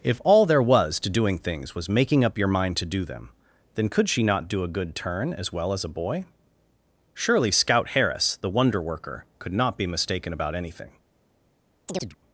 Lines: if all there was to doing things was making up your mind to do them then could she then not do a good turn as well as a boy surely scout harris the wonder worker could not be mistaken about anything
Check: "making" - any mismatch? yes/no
no